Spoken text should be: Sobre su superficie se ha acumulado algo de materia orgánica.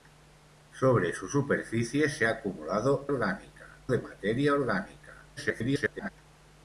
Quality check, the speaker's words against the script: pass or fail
fail